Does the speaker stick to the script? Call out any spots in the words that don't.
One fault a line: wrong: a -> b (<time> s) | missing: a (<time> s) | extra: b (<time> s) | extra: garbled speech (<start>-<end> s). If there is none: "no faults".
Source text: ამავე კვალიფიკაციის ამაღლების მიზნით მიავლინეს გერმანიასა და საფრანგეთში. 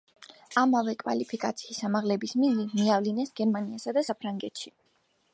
no faults